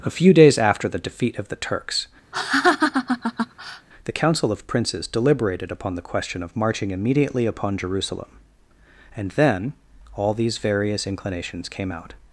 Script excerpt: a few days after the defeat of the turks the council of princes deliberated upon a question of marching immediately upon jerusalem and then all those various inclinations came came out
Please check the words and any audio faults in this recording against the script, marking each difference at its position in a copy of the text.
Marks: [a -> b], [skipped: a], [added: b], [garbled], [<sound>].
a few days after the defeat of the turks [laugh] the council of princes deliberated upon [a -> the] question of marching immediately upon jerusalem and then all [those -> these] various inclinations came [skipped: came] out